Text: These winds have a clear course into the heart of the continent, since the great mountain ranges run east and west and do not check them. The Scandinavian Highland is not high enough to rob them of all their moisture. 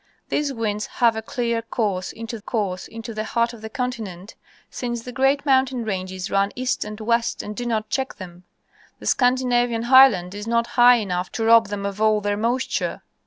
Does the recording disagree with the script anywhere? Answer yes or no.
yes